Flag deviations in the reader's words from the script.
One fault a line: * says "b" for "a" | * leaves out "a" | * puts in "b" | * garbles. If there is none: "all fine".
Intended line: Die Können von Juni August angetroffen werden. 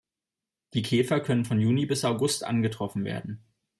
* puts in "Käfer"
* puts in "bis"